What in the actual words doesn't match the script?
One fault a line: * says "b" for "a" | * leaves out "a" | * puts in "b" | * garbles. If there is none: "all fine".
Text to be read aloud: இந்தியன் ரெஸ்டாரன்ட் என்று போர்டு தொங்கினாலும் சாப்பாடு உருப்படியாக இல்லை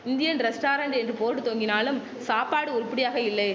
all fine